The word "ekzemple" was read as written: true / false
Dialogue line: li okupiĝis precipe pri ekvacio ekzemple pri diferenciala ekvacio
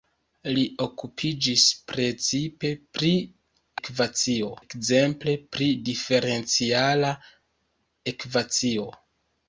true